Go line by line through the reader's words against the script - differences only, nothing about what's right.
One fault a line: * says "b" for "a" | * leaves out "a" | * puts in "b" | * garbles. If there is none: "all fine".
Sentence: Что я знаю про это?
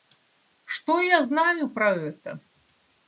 all fine